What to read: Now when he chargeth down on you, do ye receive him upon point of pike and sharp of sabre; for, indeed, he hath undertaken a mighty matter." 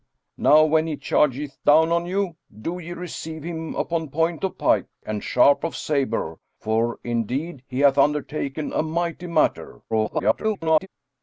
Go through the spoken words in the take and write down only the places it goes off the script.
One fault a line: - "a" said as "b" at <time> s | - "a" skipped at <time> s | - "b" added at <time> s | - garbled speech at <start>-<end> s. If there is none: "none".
- garbled speech at 9.9-10.9 s